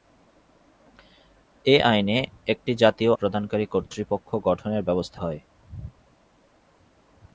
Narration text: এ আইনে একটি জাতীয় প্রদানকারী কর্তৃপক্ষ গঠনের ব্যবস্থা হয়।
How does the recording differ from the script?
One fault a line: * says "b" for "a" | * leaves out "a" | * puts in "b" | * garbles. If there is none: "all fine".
all fine